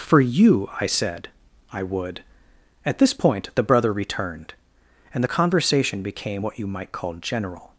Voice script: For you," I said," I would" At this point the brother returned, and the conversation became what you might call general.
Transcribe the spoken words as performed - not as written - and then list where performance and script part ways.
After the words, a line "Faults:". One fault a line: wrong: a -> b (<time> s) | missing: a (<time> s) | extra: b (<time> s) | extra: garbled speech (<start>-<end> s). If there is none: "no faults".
For you," I said," I would" At this point the brother returned, and the conversation became what you might call general.
Faults:
no faults